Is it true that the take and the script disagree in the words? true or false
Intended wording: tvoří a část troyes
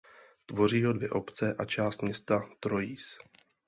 true